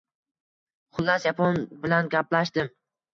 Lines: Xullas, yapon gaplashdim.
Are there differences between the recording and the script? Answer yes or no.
yes